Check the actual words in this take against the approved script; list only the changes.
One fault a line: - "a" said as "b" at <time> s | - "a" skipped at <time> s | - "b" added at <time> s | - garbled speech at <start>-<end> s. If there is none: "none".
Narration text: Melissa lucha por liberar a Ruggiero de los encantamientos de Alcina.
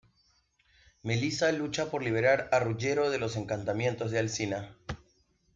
none